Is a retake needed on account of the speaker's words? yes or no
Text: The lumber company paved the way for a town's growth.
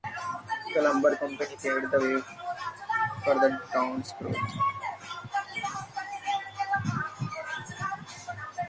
yes